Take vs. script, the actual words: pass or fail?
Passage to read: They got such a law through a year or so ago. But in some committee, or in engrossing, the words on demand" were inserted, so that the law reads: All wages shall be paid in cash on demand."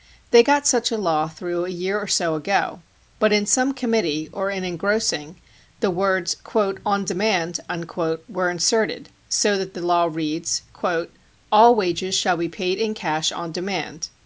pass